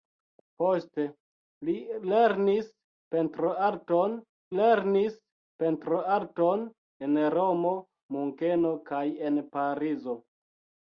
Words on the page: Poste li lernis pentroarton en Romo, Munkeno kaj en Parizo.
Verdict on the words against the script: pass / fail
fail